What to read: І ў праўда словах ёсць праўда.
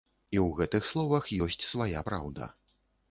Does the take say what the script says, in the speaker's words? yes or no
no